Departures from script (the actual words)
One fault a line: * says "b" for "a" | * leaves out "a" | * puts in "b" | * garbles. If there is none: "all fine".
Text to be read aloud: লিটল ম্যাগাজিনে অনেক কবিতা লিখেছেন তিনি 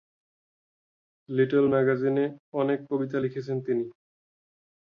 all fine